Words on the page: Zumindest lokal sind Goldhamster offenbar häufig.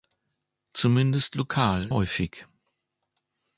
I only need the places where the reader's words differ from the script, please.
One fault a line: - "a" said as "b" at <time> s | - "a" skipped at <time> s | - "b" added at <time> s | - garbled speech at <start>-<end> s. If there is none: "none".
- "sind Goldhamster offenbar" skipped at 1.9 s